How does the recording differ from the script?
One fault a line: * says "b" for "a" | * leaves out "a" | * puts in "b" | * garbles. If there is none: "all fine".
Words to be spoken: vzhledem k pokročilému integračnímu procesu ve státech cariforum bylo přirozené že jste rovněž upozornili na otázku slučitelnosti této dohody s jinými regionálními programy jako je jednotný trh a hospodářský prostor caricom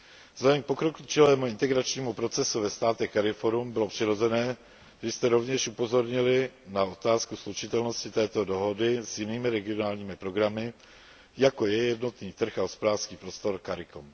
all fine